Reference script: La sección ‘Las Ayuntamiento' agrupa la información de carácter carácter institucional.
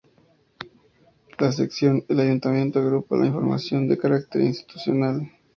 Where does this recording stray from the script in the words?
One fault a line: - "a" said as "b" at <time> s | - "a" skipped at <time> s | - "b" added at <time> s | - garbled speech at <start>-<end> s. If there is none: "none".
- "Las" said as "El" at 2.1 s
- "carácter" skipped at 4.4 s